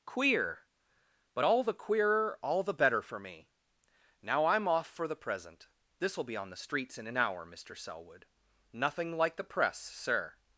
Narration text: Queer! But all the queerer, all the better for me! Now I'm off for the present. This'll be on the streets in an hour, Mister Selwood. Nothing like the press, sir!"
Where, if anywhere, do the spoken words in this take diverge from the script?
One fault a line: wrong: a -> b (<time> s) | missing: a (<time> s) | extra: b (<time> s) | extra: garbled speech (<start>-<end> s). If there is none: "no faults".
no faults